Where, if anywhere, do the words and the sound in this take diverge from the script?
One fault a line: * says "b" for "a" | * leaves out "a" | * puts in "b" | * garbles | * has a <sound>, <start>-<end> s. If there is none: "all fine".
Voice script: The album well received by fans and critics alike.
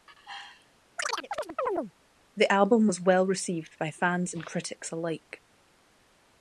* has a chirp, 1.0-1.9 s
* puts in "was"